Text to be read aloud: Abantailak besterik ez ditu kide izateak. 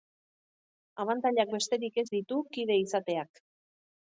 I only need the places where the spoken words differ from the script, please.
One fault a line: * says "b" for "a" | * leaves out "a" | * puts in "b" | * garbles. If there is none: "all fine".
all fine